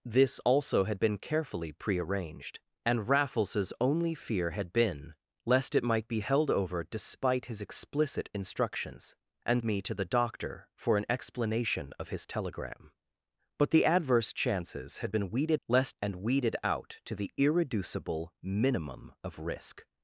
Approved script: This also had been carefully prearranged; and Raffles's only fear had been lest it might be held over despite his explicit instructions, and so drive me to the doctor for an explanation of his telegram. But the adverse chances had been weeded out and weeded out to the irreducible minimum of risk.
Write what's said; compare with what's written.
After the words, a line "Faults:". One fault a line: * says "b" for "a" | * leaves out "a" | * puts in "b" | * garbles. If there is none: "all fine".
This also had been carefully prearranged; and Raffles's only fear had been lest it might be held over despite his explicit instructions, and me to the doctor for an explanation of his telegram. But the adverse chances had been weeded lest and weeded out to the irreducible minimum of risk.
Faults:
* leaves out "so drive"
* says "lest" for "out"